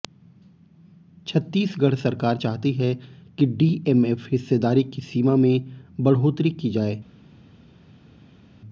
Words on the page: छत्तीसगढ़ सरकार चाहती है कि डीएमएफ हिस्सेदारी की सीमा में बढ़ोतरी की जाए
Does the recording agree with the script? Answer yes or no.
yes